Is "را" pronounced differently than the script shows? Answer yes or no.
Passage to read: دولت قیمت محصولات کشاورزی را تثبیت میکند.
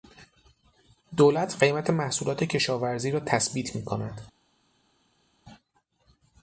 no